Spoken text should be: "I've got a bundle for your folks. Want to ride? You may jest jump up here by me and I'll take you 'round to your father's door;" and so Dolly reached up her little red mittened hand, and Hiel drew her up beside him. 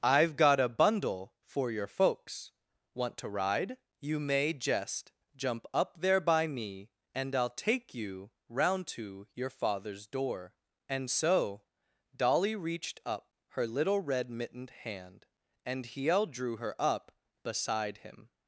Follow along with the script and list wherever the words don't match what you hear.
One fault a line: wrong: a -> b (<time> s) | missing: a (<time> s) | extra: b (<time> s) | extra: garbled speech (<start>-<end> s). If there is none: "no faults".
wrong: here -> there (6.0 s)